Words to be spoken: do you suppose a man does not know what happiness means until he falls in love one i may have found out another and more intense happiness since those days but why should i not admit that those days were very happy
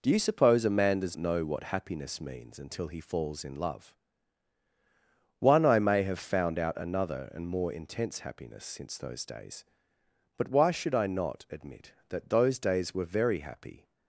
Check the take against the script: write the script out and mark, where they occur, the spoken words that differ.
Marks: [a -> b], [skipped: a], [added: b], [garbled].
do you suppose a man does [skipped: not] know what happiness means until he falls in love one i may have found out another and more intense happiness since those days but why should i not admit that those days were very happy